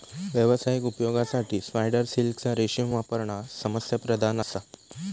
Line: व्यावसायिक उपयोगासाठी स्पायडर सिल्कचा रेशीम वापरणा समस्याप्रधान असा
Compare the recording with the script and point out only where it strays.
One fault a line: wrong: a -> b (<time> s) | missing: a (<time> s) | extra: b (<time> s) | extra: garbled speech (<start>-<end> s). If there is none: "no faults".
no faults